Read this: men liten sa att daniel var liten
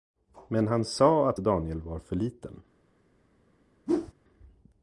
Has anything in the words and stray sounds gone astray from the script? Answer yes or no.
yes